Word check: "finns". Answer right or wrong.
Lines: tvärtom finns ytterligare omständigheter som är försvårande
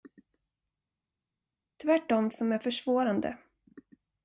wrong